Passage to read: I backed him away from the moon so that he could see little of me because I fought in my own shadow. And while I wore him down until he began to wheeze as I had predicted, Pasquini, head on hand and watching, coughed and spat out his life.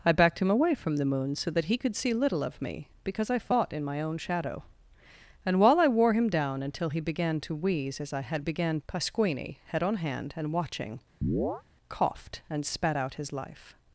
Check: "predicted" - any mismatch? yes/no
yes